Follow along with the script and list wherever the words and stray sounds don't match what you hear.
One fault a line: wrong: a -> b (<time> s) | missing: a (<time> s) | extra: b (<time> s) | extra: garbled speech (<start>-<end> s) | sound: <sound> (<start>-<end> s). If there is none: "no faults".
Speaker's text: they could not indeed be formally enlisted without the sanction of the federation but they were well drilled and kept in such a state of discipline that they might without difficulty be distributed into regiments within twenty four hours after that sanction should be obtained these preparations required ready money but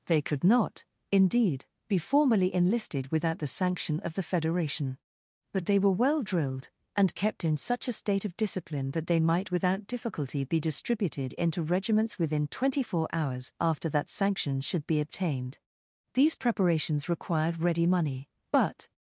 no faults